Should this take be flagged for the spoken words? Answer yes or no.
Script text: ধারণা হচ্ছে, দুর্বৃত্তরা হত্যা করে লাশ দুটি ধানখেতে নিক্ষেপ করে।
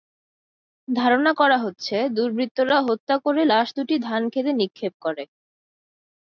yes